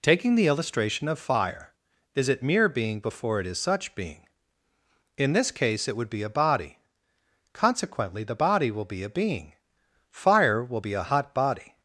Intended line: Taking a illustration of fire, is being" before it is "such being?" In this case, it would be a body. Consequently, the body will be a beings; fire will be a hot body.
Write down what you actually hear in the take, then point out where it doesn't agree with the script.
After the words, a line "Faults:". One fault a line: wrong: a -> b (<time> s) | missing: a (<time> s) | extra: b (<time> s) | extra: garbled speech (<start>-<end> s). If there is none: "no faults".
Taking the illustration of fire, is it "mere being" before it is "such being?" In this case, it would be a body. Consequently, the body will be a being; fire will be a hot body.
Faults:
wrong: a -> the (0.3 s)
extra: it mere (2.3 s)
wrong: beings -> being (9.1 s)